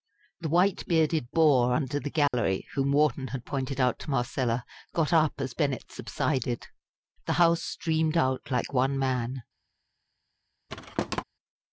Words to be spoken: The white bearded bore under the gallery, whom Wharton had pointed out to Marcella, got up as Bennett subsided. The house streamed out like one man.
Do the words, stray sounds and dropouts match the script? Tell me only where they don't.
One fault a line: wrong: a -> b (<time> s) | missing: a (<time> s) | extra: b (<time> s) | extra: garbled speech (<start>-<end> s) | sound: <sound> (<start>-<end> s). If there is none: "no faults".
sound: dropout (2.3-2.3 s)
sound: thud (10.7-11.2 s)